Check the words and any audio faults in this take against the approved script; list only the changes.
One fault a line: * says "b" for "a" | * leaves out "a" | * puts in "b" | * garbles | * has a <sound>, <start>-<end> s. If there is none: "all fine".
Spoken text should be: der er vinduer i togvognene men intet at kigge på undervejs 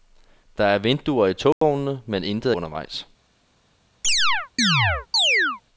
* has a dropout, 1.5-1.6 s
* leaves out "at kigge på"
* has a chirp, 4.0-5.6 s